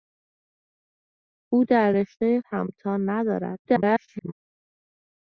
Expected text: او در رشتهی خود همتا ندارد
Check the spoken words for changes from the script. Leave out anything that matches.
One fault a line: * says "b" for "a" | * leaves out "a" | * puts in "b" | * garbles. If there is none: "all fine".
* leaves out "خود"
* garbles